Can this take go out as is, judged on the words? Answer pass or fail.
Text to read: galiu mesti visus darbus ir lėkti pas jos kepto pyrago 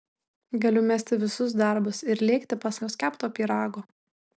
pass